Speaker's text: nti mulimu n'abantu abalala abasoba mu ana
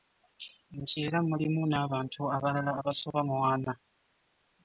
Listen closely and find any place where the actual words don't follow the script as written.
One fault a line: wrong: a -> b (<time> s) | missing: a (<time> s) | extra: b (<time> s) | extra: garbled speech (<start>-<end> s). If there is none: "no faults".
extra: era (1.1 s)